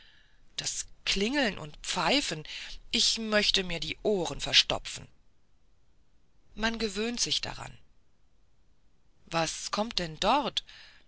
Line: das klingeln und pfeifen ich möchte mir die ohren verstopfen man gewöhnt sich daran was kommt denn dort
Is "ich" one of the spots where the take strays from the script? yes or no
no